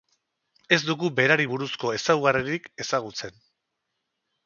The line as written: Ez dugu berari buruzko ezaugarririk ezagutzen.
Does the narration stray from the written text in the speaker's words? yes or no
no